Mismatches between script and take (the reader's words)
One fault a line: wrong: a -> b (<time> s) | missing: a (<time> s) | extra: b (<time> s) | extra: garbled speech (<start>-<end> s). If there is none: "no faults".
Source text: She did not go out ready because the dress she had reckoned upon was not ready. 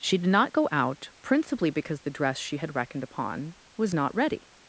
wrong: ready -> principally (1.2 s)